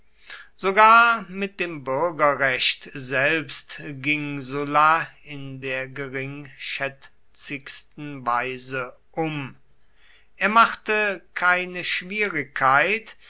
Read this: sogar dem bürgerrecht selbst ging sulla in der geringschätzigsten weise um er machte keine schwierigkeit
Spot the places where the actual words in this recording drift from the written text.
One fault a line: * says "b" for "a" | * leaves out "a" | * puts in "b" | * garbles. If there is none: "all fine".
* puts in "mit"